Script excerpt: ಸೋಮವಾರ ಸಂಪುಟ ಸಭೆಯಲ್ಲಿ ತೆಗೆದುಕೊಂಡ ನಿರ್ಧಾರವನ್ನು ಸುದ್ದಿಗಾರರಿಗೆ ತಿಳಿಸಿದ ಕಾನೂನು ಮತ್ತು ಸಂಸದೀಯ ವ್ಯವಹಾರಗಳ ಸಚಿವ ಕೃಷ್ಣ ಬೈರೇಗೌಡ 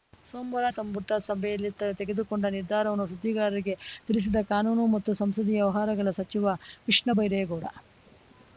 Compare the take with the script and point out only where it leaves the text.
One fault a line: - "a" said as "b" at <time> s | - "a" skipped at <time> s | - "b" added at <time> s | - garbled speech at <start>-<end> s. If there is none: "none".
none